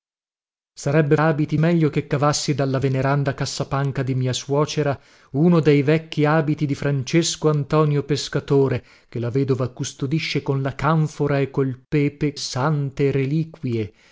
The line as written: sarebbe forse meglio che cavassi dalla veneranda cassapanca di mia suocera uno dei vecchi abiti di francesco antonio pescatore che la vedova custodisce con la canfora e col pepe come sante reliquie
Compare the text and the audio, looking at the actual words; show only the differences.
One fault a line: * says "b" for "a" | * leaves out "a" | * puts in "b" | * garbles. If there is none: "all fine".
* says "abiti" for "forse"
* leaves out "come"